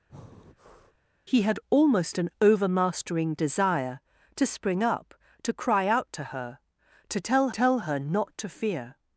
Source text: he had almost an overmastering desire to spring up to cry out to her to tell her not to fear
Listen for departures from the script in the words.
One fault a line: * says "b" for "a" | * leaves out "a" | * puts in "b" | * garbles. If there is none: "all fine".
* puts in "tell"